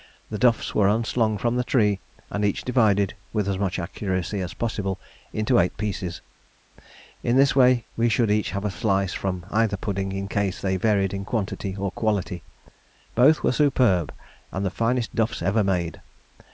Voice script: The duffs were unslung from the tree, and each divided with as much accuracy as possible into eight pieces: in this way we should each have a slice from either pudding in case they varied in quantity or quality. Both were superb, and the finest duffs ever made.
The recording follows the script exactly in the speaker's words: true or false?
true